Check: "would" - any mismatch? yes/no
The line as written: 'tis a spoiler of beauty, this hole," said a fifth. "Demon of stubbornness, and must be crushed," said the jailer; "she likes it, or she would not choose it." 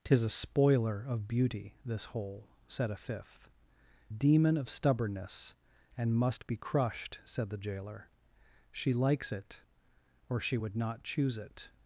no